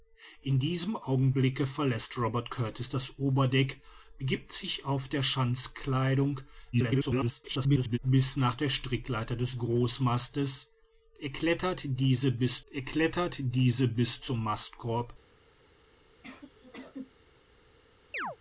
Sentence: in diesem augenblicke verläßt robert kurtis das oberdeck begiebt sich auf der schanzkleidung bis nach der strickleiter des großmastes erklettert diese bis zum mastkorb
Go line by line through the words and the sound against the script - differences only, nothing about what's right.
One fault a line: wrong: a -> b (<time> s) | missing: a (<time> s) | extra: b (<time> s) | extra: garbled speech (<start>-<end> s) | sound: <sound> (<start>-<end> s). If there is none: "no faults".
extra: garbled speech (6.7-8.0 s)
extra: erklettert diese bis (12.7 s)
sound: sneeze (16.2-17.1 s)
sound: chirp (18.1-18.4 s)